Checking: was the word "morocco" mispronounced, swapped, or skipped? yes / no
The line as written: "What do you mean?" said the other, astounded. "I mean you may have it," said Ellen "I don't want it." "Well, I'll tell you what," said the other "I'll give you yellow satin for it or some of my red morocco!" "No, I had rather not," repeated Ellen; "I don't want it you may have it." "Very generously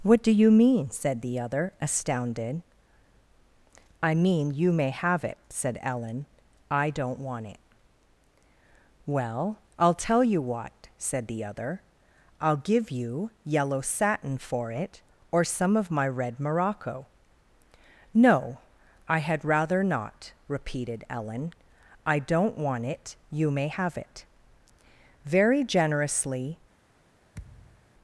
no